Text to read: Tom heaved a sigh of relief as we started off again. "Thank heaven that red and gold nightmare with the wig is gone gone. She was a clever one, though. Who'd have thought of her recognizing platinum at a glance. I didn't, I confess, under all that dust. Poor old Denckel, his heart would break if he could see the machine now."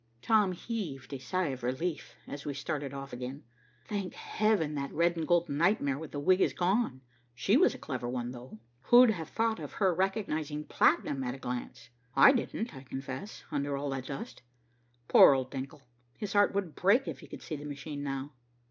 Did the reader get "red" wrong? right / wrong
right